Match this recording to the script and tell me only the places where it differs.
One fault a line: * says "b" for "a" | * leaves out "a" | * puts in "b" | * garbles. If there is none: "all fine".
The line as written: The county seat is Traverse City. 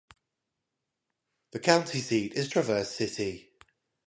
all fine